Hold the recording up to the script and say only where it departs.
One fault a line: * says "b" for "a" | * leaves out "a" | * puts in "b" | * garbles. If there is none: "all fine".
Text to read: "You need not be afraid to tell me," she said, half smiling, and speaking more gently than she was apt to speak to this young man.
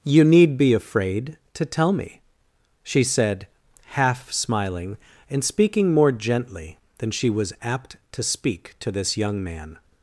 * leaves out "not"